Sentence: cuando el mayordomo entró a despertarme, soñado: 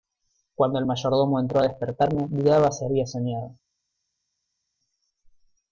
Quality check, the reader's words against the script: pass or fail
fail